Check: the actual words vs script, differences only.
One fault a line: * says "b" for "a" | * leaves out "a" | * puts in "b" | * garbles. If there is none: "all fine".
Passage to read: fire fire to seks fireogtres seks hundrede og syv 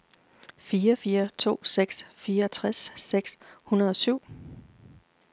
all fine